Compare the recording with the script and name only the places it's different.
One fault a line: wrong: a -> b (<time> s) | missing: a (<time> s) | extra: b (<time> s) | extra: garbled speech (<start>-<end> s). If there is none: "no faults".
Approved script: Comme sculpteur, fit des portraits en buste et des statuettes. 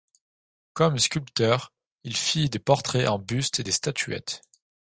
extra: il (2.0 s)